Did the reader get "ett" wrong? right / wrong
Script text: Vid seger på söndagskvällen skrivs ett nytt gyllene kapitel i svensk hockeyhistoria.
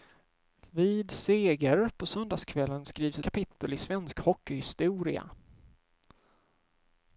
wrong